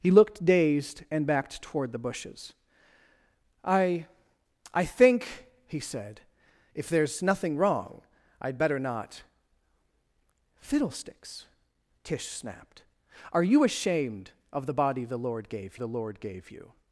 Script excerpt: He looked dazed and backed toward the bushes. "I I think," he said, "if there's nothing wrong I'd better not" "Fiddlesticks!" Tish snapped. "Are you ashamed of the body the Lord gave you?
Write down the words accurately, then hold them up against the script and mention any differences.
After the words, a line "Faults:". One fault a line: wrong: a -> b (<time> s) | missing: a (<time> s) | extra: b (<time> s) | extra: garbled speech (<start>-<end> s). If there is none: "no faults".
He looked dazed and backed toward the bushes. "I I think," he said, "if there's nothing wrong I'd better not" "Fiddlesticks!" Tish snapped. "Are you ashamed of the body the Lord gave the Lord gave you?
Faults:
extra: the Lord gave (15.7 s)